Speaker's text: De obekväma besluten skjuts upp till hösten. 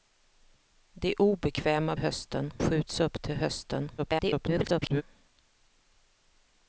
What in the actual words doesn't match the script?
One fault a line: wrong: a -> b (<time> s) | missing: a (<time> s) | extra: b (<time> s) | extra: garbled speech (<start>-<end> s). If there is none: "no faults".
wrong: besluten -> hösten (2.0 s)
extra: garbled speech (4.0-5.0 s)